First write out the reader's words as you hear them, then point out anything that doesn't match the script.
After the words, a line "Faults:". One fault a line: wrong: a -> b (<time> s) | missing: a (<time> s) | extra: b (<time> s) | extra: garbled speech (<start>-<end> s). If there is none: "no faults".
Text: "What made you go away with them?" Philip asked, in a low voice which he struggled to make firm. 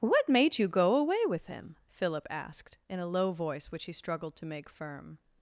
"What made you go away with him?" Philip asked, in a low voice which he struggled to make firm.
Faults:
wrong: them -> him (1.4 s)